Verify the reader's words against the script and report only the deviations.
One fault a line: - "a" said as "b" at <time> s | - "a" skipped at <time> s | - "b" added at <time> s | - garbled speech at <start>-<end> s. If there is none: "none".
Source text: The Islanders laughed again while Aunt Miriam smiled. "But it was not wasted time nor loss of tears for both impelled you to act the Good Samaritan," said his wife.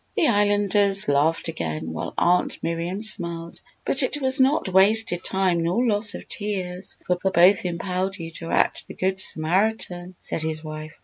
- "for" added at 7.2 s